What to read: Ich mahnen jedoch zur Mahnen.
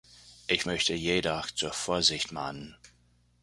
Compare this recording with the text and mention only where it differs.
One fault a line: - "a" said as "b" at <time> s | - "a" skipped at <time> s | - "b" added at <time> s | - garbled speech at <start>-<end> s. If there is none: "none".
- "mahnen" said as "möchte" at 0.6 s
- "Vorsicht" added at 1.7 s